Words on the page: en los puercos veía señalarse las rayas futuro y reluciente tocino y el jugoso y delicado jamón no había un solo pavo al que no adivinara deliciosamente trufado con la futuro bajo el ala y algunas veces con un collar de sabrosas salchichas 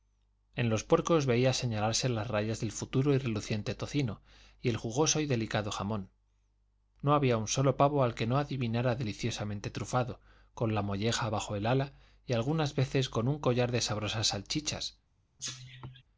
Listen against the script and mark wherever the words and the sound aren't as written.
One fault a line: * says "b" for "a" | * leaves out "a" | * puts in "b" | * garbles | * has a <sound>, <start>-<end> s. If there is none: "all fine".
* puts in "del"
* says "molleja" for "futuro"
* has a cough, 15.4-16.0 s